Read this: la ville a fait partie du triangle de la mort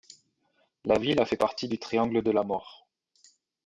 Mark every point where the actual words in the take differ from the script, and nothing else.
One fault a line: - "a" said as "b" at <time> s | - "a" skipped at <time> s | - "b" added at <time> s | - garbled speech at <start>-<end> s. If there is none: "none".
none